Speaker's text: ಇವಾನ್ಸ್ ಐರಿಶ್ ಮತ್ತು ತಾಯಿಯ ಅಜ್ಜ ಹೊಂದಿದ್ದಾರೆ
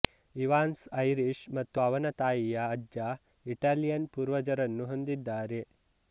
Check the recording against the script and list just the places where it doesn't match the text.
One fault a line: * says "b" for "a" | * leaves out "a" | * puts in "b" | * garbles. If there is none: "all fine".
* puts in "ಅವನ"
* puts in "ಇಟಾಲಿಯನ್ ಪೂರ್ವಜರನ್ನು"